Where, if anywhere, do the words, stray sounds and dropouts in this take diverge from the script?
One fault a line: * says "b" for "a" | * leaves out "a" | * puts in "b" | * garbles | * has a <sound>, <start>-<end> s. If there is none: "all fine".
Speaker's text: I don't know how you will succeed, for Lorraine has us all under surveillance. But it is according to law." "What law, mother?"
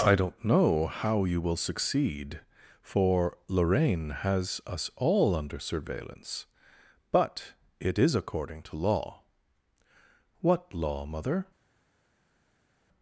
all fine